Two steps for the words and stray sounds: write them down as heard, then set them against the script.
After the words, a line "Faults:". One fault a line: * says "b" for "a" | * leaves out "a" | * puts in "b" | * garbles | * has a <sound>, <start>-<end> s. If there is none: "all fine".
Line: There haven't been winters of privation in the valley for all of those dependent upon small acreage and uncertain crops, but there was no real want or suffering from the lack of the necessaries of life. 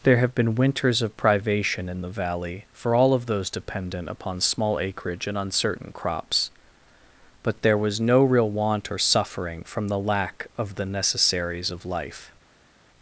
There have been winters of privation in the valley for all of those dependent upon small acreage and uncertain crops, but there was no real want or suffering from the lack of the necessaries of life.
Faults:
* says "have" for "haven't"